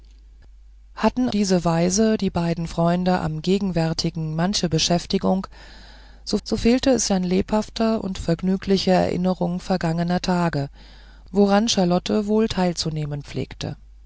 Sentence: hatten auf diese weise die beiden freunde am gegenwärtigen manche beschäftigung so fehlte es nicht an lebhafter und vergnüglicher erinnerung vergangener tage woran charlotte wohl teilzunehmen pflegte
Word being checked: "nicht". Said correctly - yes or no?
no